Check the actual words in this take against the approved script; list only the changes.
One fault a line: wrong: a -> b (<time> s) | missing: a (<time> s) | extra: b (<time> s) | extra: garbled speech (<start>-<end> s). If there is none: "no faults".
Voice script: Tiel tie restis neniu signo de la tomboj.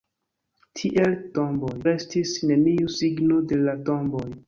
wrong: tie -> tomboj (1.4 s)